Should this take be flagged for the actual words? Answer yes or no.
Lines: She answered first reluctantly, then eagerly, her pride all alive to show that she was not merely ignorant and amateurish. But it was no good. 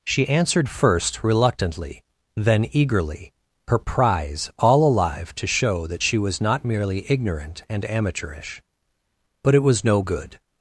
yes